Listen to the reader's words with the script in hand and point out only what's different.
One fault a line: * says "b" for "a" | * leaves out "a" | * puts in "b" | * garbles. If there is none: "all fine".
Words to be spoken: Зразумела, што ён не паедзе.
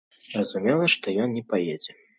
all fine